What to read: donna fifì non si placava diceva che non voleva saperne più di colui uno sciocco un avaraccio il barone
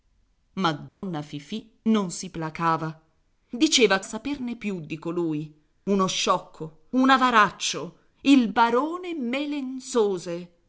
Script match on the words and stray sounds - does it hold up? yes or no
no